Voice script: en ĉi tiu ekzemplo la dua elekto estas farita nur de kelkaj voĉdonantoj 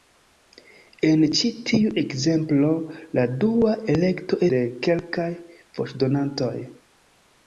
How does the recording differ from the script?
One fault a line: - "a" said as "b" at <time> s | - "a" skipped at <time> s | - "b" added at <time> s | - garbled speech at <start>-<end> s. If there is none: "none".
- "estas farita nur" skipped at 4.4 s